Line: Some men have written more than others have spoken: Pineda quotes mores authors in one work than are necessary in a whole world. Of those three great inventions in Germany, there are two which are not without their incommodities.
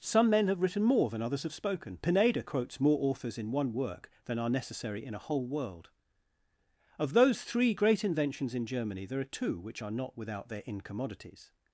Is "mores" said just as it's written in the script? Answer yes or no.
no